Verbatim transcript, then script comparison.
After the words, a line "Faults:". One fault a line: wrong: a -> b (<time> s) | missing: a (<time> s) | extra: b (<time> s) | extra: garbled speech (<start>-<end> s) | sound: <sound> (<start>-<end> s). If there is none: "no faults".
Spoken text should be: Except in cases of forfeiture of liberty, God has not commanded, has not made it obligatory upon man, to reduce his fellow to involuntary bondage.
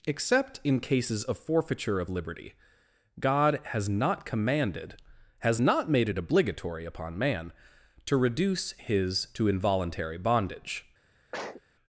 Except in cases of forfeiture of liberty, God has not commanded, has not made it obligatory upon man, to reduce his to involuntary bondage.
Faults:
missing: fellow (9.3 s)
sound: sneeze (11.3-11.6 s)